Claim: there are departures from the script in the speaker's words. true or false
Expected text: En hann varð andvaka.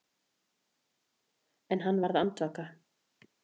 false